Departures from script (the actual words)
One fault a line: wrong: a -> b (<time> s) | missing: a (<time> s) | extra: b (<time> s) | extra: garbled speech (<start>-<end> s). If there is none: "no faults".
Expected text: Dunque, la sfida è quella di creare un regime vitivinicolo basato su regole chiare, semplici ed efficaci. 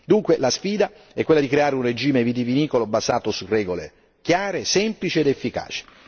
no faults